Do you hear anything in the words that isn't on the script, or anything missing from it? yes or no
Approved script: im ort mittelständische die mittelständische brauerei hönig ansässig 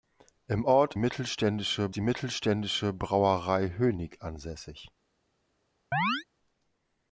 no